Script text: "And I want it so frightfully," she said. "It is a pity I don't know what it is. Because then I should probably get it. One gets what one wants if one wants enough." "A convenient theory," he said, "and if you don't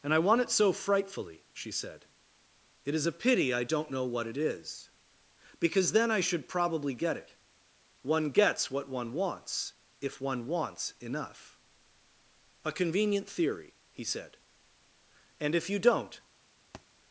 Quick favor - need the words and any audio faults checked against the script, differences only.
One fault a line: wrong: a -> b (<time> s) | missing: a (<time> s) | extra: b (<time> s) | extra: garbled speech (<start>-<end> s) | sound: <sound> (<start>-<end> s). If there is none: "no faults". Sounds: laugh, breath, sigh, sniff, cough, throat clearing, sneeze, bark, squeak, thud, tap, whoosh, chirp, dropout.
sound: thud (16.7-16.9 s)